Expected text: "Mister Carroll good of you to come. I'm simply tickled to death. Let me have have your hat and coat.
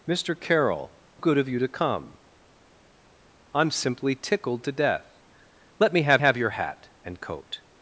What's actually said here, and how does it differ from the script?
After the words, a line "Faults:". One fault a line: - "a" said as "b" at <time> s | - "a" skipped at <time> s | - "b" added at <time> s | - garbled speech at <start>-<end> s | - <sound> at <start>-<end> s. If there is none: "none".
"Mister Carroll good of you to come. I'm simply tickled to death. Let me have have your hat and coat.
Faults:
none